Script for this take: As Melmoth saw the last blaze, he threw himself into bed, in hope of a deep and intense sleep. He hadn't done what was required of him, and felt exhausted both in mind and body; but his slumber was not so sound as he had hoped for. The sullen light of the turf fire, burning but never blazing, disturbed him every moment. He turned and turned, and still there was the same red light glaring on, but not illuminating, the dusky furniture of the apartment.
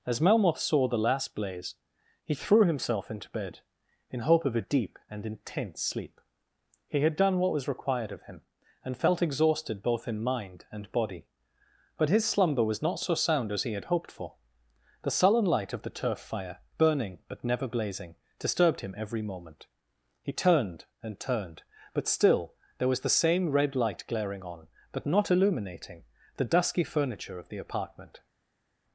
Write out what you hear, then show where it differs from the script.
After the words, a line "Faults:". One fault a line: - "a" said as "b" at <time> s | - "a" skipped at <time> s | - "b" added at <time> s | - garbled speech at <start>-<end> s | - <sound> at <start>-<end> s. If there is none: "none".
As Melmoth saw the last blaze, he threw himself into bed, in hope of a deep and intense sleep. He had done what was required of him, and felt exhausted both in mind and body; but his slumber was not so sound as he had hoped for. The sullen light of the turf fire, burning but never blazing, disturbed him every moment. He turned and turned, but still there was the same red light glaring on, but not illuminating, the dusky furniture of the apartment.
Faults:
- "hadn't" said as "had" at 7.0 s
- "and" said as "but" at 21.9 s